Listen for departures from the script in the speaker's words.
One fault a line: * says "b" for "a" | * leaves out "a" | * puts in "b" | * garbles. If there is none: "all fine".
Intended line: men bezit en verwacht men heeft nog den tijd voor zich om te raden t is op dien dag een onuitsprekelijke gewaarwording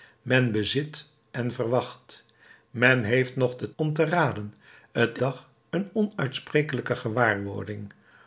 * leaves out "tijd voor zich"
* leaves out "is op dien"